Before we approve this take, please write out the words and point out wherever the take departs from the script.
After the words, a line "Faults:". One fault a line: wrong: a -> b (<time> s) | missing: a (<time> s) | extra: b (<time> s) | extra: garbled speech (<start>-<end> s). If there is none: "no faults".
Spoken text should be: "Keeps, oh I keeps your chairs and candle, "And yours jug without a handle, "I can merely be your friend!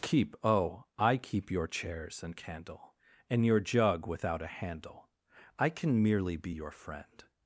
"Keep, oh I keep your chairs and candle, "And your jug without a handle, "I can merely be your friend!
Faults:
wrong: Keeps -> Keep (0.0 s)
wrong: keeps -> keep (1.2 s)
wrong: yours -> your (3.4 s)